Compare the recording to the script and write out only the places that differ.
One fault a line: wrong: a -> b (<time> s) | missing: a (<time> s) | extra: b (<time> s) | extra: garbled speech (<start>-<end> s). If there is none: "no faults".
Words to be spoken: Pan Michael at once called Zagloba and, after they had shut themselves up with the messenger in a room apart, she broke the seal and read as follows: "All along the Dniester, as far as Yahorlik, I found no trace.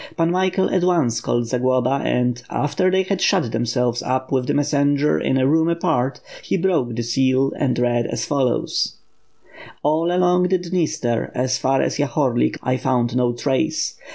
wrong: she -> he (6.4 s)